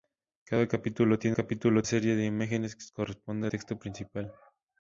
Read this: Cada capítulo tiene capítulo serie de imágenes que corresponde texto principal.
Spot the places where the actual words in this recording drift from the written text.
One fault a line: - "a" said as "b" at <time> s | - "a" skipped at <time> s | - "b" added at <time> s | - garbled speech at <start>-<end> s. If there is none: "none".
none